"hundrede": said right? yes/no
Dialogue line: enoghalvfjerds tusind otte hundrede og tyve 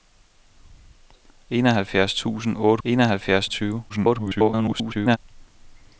no